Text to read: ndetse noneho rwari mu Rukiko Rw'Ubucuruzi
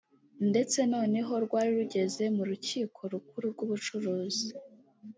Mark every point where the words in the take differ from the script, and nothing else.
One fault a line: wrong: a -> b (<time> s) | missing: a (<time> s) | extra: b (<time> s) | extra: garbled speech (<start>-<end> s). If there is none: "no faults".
extra: rugeze (1.8 s)
extra: Rukuru (3.1 s)